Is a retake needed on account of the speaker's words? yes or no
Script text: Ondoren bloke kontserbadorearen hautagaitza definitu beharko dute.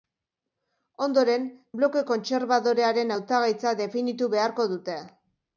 no